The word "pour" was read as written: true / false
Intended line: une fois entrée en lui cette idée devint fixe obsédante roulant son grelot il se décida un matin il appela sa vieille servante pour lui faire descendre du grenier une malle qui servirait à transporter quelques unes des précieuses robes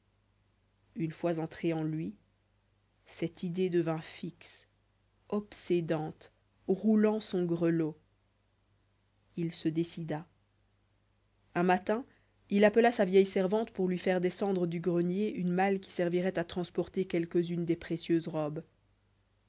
true